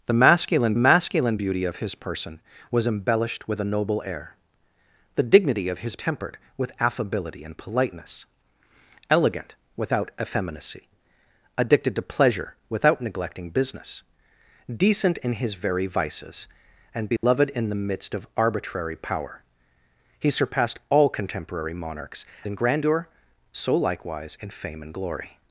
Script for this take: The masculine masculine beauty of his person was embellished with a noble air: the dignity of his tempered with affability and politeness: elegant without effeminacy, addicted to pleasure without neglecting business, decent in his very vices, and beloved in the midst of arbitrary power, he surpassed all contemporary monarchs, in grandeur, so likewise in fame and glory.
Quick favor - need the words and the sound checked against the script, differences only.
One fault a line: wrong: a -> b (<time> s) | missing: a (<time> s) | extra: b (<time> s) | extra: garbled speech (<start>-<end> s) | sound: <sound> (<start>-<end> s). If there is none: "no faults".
sound: dropout (17.2-17.2 s)